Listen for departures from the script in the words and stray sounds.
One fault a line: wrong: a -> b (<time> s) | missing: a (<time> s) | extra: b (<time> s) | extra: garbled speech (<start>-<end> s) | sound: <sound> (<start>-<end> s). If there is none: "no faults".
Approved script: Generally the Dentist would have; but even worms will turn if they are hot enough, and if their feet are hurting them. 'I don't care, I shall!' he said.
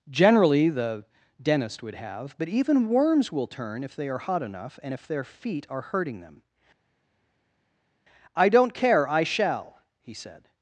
no faults